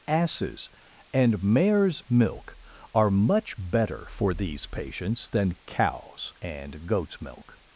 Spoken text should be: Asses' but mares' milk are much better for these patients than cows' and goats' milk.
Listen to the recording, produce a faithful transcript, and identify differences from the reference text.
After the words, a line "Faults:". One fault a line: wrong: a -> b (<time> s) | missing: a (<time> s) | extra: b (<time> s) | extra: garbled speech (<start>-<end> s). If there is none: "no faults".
Asses' and mares' milk are much better for these patients than cows' and goats' milk.
Faults:
wrong: but -> and (1.1 s)